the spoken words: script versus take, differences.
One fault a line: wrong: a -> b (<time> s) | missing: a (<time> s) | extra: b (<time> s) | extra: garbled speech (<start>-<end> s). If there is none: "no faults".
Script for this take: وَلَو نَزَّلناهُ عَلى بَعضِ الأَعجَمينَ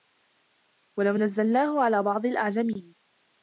no faults